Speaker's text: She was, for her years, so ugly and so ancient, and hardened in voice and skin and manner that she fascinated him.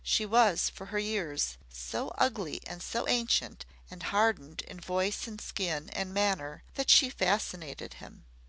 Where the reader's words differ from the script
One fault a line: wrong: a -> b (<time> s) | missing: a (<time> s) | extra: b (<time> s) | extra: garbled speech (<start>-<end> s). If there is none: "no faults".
no faults